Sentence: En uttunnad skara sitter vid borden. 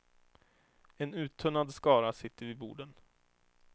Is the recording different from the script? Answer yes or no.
no